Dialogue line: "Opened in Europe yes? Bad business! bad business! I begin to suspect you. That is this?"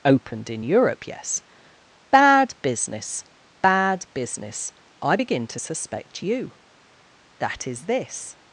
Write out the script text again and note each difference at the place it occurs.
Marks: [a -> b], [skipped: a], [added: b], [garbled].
"Opened in Europe yes? Bad business! bad business! I begin to suspect you. That is this?"